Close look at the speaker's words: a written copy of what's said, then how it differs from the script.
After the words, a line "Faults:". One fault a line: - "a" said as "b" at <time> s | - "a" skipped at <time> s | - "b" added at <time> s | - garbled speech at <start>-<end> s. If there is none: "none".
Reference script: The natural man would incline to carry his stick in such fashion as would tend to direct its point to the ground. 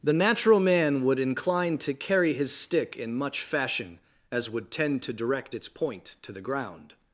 The natural man would incline to carry his stick in much fashion as would tend to direct its point to the ground.
Faults:
- "such" said as "much" at 3.1 s